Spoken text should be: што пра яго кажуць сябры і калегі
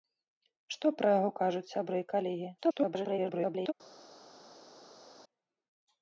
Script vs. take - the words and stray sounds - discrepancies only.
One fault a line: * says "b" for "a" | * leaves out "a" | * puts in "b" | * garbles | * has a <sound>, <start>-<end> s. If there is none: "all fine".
* garbles